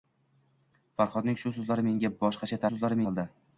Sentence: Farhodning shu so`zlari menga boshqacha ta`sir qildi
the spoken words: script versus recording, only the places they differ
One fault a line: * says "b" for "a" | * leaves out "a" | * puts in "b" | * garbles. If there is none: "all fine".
* says "so`zlari" for "ta`sir"